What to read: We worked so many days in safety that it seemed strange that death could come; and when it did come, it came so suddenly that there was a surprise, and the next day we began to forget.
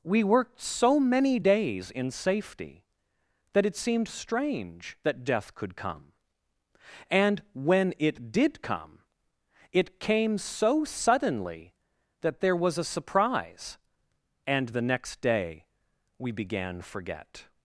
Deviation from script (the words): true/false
true